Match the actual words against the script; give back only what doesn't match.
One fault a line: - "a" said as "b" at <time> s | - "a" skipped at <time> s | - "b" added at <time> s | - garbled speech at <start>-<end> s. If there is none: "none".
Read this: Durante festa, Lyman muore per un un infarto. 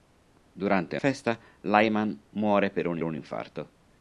none